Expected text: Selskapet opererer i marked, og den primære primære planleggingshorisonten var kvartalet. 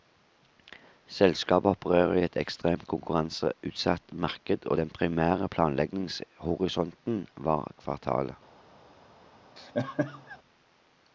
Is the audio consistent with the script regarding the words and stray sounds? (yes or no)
no